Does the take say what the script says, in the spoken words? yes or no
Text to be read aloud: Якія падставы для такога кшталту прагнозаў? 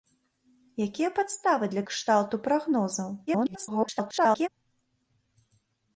no